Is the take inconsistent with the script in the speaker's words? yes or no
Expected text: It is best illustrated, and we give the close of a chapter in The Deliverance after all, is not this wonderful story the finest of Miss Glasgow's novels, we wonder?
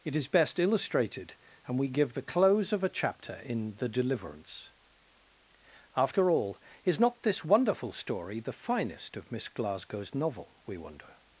yes